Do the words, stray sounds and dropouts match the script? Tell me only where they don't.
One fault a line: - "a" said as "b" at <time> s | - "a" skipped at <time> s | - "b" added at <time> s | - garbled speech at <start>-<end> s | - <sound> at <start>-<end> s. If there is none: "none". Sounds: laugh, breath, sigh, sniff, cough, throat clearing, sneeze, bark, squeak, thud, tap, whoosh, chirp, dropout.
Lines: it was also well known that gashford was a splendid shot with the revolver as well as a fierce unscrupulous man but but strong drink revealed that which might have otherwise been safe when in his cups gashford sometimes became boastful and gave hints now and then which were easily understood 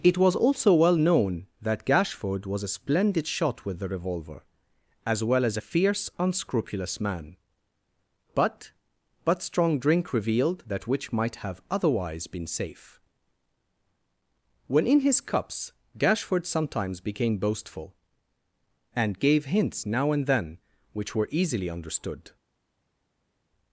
none